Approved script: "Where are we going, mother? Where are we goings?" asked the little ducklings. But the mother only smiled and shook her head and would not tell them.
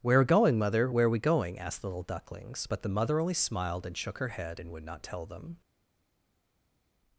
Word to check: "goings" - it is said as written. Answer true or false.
false